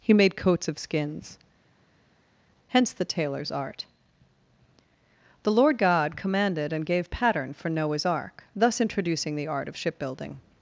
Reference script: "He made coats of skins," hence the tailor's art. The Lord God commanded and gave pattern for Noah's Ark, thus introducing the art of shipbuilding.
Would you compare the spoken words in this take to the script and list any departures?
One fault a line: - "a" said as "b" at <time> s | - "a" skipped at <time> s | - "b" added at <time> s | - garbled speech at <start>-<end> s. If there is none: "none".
none